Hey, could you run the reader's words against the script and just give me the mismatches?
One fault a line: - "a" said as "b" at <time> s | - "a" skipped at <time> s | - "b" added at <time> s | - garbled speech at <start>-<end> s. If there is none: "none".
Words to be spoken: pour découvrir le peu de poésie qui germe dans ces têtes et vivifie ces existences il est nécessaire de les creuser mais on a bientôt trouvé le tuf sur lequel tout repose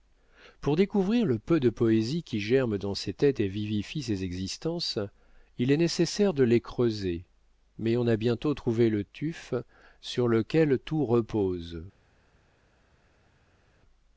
none